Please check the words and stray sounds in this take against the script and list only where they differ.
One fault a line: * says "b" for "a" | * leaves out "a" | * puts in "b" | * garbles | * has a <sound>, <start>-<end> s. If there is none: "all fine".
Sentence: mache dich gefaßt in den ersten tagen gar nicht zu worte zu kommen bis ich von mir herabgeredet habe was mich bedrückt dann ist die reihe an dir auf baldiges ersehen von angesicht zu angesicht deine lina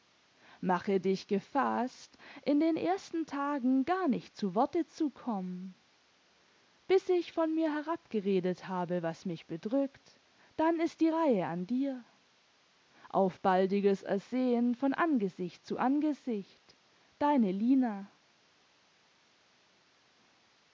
all fine